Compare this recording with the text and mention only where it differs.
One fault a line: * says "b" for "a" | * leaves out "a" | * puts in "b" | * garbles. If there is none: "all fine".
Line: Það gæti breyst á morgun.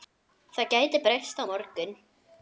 all fine